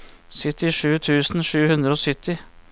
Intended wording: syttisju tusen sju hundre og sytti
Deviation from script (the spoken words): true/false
false